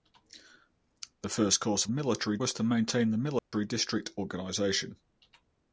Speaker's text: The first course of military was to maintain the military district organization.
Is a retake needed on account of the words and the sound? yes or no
yes